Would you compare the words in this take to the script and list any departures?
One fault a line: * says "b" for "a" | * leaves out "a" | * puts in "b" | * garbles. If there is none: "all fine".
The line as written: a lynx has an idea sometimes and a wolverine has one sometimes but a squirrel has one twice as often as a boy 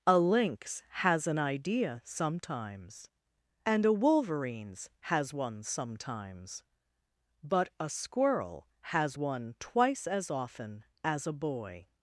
* says "wolverines" for "wolverine"